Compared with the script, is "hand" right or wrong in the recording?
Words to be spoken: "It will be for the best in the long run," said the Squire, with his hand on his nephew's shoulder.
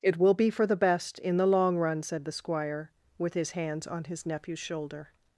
wrong